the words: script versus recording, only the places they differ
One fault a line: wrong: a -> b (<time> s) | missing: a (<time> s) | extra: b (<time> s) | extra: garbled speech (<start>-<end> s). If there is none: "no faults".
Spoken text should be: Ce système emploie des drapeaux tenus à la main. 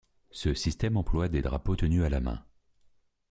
no faults